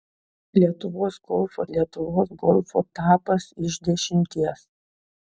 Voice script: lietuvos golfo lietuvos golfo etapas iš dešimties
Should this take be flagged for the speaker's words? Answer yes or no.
no